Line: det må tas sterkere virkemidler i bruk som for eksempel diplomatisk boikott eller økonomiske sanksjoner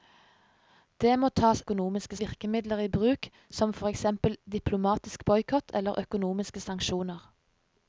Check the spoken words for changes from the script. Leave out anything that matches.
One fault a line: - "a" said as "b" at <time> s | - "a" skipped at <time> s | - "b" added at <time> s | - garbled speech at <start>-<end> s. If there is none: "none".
- "sterkere" said as "økonomiske" at 1.6 s